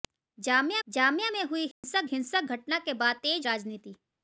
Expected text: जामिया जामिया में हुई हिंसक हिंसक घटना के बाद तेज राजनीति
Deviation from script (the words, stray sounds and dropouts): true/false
true